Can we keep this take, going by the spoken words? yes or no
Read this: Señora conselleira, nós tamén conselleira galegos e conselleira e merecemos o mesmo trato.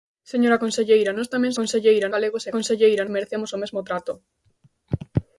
yes